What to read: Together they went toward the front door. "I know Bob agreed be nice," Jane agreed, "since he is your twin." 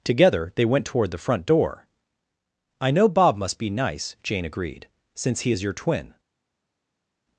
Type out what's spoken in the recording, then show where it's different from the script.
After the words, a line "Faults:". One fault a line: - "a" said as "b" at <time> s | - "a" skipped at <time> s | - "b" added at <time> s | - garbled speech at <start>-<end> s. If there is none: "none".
Together they went toward the front door. "I know Bob must be nice," Jane agreed, "since he is your twin."
Faults:
- "agreed" said as "must" at 3.4 s